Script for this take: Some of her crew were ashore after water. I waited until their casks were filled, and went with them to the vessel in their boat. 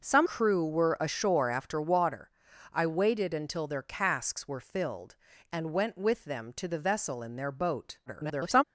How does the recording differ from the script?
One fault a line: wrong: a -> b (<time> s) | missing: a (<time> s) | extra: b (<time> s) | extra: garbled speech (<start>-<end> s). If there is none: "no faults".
missing: of her (0.3 s)
extra: garbled speech (8.1-8.6 s)